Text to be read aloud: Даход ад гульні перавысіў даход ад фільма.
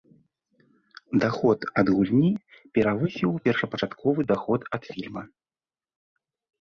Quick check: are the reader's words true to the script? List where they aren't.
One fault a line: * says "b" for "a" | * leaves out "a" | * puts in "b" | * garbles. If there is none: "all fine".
* puts in "першапачатковы"